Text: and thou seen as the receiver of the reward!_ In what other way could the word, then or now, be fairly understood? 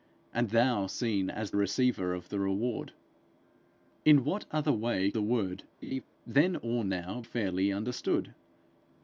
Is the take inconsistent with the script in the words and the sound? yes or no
yes